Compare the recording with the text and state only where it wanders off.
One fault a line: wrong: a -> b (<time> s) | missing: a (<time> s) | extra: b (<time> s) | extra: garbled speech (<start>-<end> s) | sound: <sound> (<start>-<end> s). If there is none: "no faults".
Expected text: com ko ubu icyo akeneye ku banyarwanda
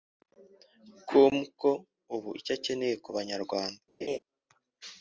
sound: laugh (4.0-4.2 s)